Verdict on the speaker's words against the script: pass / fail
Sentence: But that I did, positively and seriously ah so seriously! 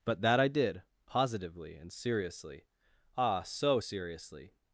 pass